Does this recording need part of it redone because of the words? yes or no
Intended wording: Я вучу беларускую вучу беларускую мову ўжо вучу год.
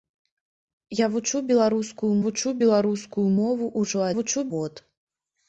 no